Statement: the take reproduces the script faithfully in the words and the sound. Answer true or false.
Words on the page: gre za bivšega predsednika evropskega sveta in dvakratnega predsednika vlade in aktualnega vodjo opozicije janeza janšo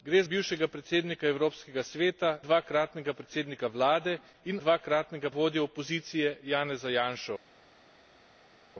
false